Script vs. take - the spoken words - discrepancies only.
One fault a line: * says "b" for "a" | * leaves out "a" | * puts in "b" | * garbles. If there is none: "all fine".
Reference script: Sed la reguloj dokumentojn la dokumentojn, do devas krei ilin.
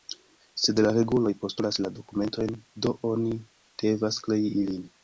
* says "postulas" for "dokumentojn"
* puts in "oni"